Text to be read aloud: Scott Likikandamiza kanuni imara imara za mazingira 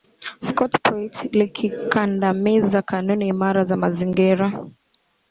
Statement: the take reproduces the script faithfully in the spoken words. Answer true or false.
false